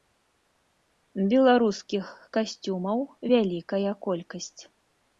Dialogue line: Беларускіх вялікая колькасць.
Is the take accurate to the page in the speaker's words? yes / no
no